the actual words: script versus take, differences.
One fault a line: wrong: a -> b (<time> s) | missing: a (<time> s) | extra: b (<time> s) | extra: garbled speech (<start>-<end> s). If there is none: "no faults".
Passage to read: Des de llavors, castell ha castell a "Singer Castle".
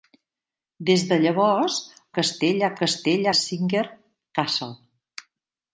no faults